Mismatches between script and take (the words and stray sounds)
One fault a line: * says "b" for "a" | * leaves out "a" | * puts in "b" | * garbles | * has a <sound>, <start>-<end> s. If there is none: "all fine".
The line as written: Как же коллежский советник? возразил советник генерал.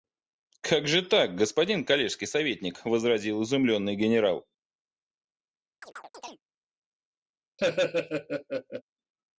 * puts in "так господин"
* says "изумленный" for "советник"
* has a chirp, 5.8-6.4 s
* has a laugh, 7.6-8.8 s